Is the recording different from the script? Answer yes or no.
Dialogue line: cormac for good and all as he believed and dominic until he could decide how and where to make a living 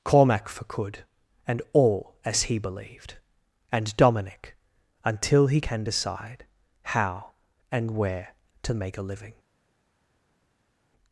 yes